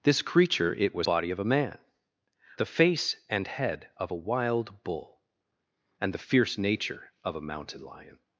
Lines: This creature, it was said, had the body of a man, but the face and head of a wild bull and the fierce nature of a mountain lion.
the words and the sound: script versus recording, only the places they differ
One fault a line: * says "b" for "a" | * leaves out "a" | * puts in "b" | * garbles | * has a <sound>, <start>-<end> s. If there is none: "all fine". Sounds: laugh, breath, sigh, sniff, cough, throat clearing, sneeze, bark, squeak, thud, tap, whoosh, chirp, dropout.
* leaves out "said had the"
* leaves out "but"